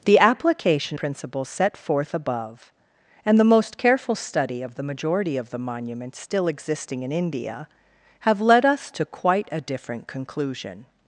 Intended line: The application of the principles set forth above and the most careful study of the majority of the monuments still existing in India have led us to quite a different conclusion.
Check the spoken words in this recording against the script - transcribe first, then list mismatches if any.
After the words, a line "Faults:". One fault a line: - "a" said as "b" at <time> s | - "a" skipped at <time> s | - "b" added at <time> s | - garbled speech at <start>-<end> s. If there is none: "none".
The application principles set forth above and the most careful study of the majority of the monuments still existing in India have led us to quite a different conclusion.
Faults:
- "of the" skipped at 1.0 s